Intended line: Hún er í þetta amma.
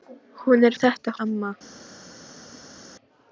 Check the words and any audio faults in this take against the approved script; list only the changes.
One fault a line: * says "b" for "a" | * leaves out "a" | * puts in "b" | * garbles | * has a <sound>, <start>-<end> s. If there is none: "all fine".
all fine